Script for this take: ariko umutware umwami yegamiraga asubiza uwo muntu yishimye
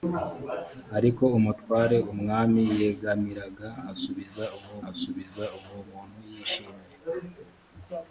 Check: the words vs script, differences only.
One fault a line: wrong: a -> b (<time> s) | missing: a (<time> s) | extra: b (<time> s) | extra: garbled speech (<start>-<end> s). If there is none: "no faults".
extra: asubiza uwo (4.9 s)